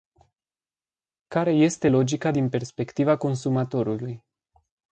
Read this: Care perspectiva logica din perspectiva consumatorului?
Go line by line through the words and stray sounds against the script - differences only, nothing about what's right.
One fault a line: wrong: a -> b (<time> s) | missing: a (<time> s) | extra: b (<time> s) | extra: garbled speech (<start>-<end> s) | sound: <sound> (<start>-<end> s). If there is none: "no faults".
wrong: perspectiva -> este (1.5 s)